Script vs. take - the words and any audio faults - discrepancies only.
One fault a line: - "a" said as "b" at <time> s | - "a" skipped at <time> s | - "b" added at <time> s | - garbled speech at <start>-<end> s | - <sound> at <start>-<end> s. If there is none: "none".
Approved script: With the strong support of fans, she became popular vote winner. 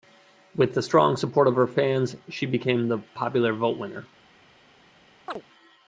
- "her" added at 1.5 s
- "the" added at 2.9 s
- chirp at 5.3-5.4 s